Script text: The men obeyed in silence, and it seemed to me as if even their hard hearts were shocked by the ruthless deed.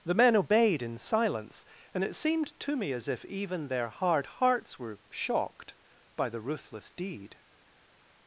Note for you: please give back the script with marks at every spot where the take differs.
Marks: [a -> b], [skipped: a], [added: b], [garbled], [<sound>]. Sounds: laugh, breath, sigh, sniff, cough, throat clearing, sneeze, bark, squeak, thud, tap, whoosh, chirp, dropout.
The men obeyed in silence, and it seemed to me as if even their hard hearts were shocked by the ruthless deed.